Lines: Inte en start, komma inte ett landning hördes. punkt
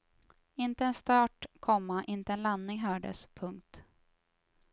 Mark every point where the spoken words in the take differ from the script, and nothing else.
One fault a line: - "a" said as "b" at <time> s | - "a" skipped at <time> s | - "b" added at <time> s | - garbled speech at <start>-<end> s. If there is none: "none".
- "ett" said as "en" at 2.3 s